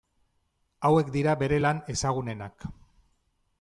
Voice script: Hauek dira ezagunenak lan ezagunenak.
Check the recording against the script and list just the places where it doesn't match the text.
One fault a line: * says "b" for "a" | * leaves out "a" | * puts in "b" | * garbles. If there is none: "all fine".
* says "bere" for "ezagunenak"